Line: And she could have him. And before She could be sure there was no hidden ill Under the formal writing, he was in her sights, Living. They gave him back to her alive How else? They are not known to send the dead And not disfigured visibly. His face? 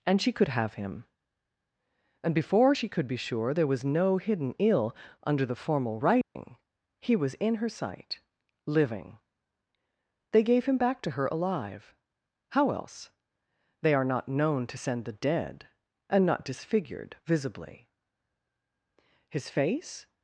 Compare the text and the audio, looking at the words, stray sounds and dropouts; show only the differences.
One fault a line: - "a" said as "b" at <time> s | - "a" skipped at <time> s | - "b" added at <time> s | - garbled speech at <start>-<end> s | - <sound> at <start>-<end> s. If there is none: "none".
- dropout at 6.2-6.4 s
- "sights" said as "sight" at 7.7 s